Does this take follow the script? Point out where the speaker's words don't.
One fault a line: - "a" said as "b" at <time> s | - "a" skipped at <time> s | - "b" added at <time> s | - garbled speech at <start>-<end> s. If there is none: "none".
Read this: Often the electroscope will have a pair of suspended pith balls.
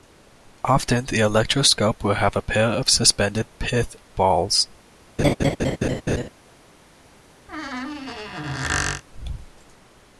none